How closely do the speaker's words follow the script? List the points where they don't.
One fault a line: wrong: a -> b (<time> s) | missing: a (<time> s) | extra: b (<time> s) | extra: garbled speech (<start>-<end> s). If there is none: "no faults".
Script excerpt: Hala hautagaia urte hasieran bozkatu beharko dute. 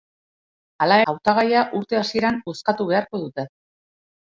no faults